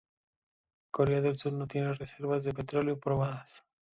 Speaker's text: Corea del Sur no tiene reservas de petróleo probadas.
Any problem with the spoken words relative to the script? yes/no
no